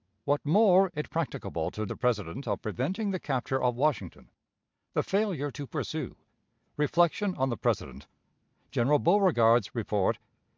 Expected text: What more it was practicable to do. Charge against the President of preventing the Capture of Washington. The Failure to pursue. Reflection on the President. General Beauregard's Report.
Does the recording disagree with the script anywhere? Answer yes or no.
yes